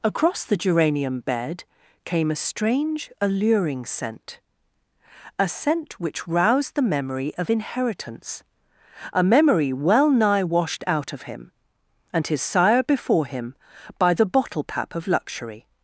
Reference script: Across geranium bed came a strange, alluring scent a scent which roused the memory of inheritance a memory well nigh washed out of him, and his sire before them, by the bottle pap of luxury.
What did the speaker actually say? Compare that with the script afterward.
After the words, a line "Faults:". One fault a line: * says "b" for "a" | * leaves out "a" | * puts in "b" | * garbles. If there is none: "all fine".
Across the geranium bed came a strange, alluring scent a scent which roused the memory of inheritance a memory well nigh washed out of him, and his sire before him, by the bottle pap of luxury.
Faults:
* puts in "the"
* says "him" for "them"